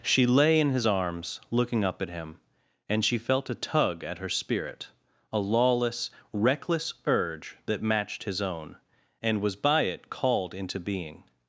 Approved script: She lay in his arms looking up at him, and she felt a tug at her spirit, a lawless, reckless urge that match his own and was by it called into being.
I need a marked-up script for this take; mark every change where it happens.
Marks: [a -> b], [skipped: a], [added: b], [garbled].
She lay in his arms looking up at him, and she felt a tug at her spirit, a lawless, reckless urge that [match -> matched] his own and was by it called into being.